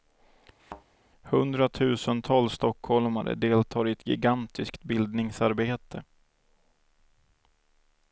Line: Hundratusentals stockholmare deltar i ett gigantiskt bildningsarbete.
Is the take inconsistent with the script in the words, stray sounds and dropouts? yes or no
yes